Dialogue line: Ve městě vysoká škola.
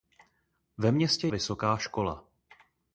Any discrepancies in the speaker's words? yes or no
no